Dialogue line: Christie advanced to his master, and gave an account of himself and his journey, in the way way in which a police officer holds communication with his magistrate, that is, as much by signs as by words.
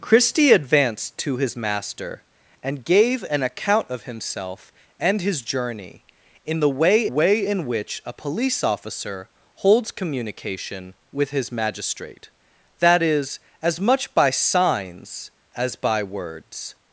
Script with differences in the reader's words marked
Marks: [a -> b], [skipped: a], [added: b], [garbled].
Christie advanced to his master, and gave an account of himself and his journey, in the way way in which a police officer holds communication with his magistrate, that is, as much by signs as by words.